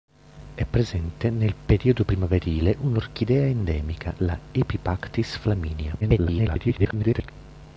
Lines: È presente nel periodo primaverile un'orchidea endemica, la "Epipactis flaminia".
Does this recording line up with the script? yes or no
no